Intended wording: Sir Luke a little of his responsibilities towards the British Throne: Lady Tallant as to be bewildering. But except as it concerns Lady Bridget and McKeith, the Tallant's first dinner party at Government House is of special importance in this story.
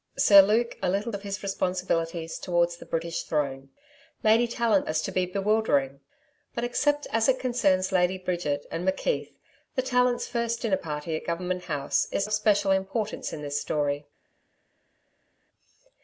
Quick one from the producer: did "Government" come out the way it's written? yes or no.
yes